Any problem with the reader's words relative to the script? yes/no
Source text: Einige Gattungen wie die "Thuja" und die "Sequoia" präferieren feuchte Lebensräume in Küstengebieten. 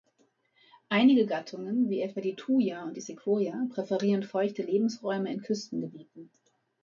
yes